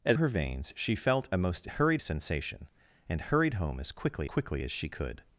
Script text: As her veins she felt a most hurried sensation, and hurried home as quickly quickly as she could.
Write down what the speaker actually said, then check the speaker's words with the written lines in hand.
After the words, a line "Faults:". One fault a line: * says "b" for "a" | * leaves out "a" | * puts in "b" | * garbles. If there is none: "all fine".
As her veins she felt a most hurried sensation, and hurried home as quickly quickly as she could.
Faults:
all fine